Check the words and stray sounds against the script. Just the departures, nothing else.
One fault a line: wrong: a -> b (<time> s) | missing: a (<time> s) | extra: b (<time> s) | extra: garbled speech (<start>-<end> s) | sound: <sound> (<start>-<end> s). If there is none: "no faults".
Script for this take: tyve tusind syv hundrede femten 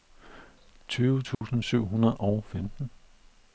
sound: dropout (1.3-1.4 s)
extra: og (2.2 s)